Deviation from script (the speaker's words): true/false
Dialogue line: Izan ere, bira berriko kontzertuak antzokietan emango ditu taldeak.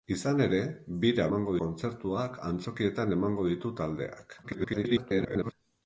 true